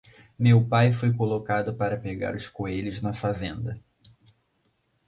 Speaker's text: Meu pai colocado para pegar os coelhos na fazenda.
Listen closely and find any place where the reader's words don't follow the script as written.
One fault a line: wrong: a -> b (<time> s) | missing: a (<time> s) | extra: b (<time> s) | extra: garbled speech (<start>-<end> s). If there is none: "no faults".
extra: foi (0.9 s)